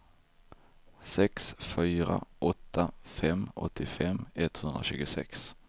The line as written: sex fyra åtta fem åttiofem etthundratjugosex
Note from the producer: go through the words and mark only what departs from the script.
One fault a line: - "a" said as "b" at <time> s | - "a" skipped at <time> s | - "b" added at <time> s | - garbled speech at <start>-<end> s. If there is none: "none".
none